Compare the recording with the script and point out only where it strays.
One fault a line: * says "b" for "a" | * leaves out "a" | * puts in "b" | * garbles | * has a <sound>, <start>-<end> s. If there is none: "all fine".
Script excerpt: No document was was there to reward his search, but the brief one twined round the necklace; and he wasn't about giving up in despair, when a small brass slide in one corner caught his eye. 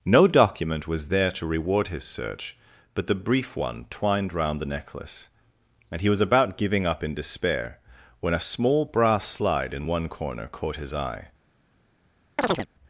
* leaves out "was"
* says "was" for "wasn't"
* has a chirp, 12.4-12.7 s